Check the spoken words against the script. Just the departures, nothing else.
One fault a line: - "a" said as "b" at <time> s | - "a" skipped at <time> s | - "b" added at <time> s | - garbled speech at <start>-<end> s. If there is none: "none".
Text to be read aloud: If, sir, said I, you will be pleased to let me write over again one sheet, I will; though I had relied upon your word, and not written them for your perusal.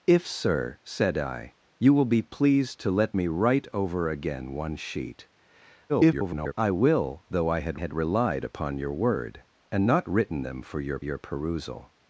- garbled speech at 5.9-6.5 s
- "had" added at 7.7 s
- "your" added at 11.0 s